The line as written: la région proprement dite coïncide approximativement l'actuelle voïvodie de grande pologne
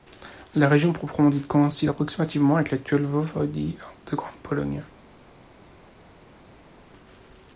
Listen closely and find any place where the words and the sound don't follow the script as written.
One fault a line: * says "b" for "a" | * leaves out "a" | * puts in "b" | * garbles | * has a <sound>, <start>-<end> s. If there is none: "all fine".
* puts in "avec"